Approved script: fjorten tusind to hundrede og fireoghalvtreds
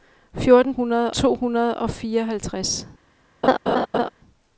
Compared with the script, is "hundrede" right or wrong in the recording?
right